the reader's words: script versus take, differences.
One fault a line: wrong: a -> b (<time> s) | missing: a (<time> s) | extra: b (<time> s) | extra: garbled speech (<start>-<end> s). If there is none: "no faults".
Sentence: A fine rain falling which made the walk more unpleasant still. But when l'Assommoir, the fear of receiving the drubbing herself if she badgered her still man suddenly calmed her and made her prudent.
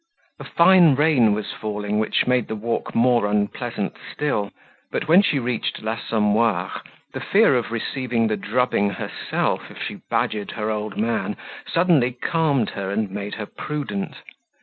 extra: was (1.4 s)
extra: she reached (5.2 s)
wrong: still -> old (10.7 s)